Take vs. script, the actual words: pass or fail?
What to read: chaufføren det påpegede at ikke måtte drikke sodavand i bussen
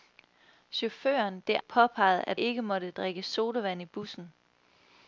pass